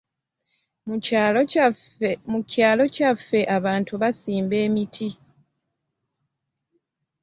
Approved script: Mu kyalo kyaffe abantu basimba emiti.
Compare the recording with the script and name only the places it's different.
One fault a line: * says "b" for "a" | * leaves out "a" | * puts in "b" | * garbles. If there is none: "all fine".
all fine